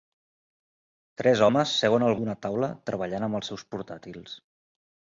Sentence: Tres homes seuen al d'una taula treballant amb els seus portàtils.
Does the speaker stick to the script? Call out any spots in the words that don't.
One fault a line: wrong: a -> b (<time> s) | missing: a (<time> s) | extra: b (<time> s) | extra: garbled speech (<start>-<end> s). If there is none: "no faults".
no faults